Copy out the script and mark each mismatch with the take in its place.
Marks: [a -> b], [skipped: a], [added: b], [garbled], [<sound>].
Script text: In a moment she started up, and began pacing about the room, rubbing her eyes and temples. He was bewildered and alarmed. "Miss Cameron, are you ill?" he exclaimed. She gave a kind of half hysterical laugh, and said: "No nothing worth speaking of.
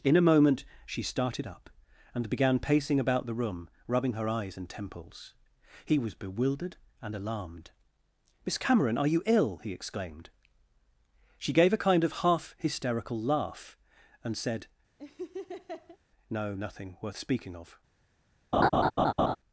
In a moment she started up, and began pacing about the room, rubbing her eyes and temples. He was bewildered and alarmed. "Miss Cameron, are you ill?" he exclaimed. She gave a kind of half hysterical laugh, and said: [laugh] "No nothing worth speaking of. [laugh]